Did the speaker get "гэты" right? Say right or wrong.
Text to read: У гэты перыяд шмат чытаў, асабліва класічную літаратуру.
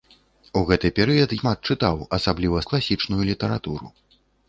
right